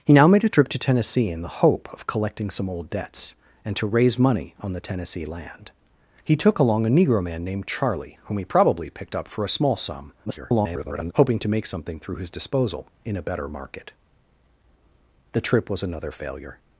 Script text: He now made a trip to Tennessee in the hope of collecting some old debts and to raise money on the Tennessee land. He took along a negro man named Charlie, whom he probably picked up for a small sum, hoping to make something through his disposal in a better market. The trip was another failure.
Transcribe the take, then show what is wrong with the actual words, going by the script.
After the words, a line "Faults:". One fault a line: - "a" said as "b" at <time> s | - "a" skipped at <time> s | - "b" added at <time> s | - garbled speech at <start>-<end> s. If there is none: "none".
He now made a trip to Tennessee in the hope of collecting some old debts and to raise money on the Tennessee land. He took along a negro man named Charlie, whom he probably picked up for a small sum, [garbled] hoping to make something through his disposal in a better market. The trip was another failure.
Faults:
- garbled speech at 10.3-11.1 s